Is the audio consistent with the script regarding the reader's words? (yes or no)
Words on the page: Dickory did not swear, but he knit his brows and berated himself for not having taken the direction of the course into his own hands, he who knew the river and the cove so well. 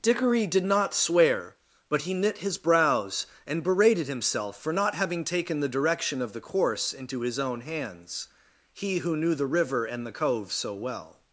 yes